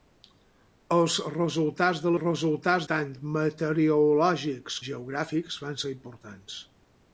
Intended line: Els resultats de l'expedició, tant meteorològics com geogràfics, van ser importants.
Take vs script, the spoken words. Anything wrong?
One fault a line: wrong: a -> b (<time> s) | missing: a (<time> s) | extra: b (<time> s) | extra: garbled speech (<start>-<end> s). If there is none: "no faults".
wrong: l'expedició -> resultats (2.2 s)
missing: com (4.8 s)